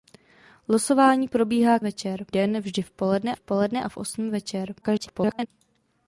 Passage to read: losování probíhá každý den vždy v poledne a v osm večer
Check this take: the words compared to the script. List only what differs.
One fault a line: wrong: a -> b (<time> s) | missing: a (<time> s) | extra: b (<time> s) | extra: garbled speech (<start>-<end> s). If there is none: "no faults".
wrong: každý -> večer (1.8 s)
extra: v poledne (3.3 s)
extra: garbled speech (4.8-5.5 s)